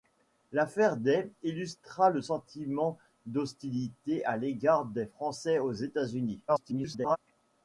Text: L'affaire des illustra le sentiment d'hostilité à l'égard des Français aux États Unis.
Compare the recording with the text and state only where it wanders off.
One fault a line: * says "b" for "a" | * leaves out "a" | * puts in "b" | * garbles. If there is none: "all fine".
* garbles